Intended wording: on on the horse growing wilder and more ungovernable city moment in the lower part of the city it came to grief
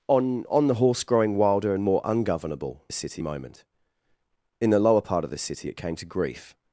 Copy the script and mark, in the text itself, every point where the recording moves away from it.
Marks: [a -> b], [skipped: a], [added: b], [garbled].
on on the horse growing wilder and more ungovernable city moment in the lower part of the city it came to grief